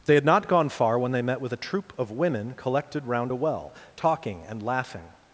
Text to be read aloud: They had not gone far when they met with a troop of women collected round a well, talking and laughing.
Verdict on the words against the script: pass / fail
pass